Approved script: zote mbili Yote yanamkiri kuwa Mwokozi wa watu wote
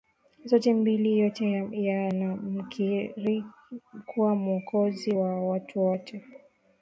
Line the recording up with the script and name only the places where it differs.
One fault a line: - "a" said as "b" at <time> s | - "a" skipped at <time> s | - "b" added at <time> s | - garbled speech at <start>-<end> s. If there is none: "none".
none